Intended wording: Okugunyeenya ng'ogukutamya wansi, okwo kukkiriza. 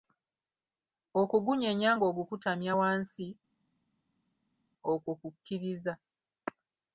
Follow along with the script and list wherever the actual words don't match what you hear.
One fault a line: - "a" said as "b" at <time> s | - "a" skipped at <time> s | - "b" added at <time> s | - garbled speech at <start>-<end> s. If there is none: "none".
none